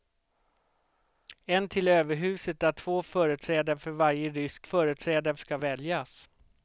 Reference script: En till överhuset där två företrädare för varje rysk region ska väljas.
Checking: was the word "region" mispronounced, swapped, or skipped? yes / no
yes